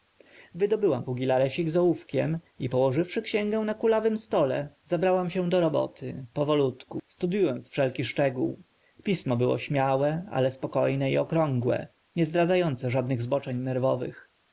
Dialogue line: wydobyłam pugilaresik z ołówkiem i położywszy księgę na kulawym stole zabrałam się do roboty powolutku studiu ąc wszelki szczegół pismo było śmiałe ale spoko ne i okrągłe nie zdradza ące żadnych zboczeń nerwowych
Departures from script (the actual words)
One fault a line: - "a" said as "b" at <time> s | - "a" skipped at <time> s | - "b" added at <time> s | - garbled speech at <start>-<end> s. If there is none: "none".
none